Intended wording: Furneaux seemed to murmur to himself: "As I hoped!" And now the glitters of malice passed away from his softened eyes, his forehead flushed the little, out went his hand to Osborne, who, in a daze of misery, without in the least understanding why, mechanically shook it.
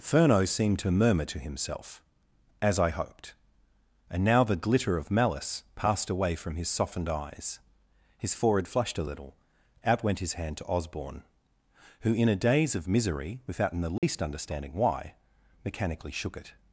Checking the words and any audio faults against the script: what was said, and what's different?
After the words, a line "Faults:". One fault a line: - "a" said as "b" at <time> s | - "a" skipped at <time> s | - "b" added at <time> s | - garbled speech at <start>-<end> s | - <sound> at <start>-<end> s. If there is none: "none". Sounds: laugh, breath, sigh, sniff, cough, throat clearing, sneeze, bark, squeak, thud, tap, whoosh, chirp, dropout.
Furneaux seemed to murmur to himself: "As I hoped!" And now the glitter of malice passed away from his softened eyes, his forehead flushed a little, out went his hand to Osborne, who, in a daze of misery, without in the least understanding why, mechanically shook it.
Faults:
- "glitters" said as "glitter" at 4.5 s
- "the" said as "a" at 9.0 s
- dropout at 14.0-14.0 s